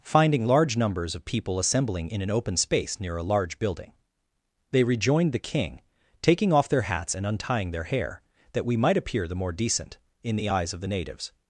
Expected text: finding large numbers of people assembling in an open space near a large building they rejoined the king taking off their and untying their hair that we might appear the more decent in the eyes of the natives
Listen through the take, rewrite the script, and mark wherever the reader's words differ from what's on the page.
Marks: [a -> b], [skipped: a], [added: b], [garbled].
finding large numbers of people assembling in an open space near a large building they rejoined the king taking off their [added: hats] and untying their hair that we might appear the more decent in the eyes of the natives